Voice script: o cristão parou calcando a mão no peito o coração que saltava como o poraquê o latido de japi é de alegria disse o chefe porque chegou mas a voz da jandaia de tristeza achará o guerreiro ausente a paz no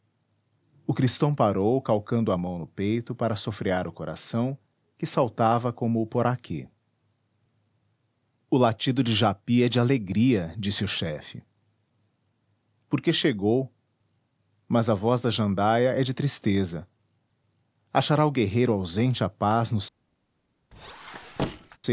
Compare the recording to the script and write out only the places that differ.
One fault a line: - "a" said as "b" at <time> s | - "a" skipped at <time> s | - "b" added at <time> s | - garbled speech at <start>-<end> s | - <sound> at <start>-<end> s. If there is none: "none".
- "para sofrear" added at 3.1 s
- "é" added at 15.9 s
- squeak at 20.7-21.8 s